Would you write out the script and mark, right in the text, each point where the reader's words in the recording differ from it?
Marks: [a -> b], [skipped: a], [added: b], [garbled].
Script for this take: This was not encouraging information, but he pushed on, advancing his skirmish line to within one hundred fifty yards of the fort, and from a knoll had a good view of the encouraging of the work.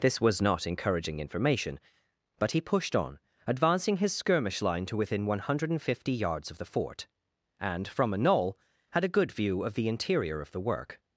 This was not encouraging information, but he pushed on, advancing his skirmish line to within one hundred fifty yards of the fort, and from a knoll had a good view of the [encouraging -> interior] of the work.